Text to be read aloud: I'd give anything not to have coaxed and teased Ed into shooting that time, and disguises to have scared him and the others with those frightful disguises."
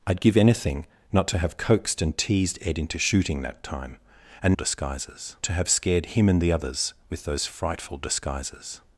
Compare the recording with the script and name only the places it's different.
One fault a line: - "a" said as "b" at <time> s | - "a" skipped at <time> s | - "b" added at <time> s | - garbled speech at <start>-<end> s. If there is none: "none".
none